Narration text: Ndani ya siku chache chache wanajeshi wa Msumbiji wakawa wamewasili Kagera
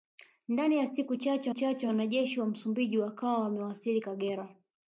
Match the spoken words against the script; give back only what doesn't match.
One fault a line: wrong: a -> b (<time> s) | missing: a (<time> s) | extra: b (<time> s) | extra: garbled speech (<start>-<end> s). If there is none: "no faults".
no faults